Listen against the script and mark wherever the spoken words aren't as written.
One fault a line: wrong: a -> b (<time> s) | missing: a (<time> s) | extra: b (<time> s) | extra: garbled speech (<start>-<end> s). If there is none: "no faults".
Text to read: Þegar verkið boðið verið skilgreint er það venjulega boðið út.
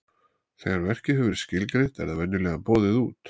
wrong: boðið -> hefur (1.2 s)